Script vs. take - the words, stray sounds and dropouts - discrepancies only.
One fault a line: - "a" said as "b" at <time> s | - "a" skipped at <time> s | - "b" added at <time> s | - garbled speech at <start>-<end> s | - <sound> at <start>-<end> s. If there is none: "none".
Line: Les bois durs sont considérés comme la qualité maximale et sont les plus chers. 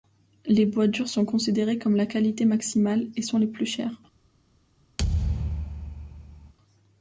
- thud at 5.0-6.5 s